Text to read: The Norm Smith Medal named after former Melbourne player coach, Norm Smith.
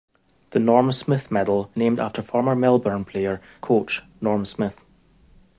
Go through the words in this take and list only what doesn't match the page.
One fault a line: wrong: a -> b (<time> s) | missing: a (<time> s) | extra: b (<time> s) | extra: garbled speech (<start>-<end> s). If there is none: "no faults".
no faults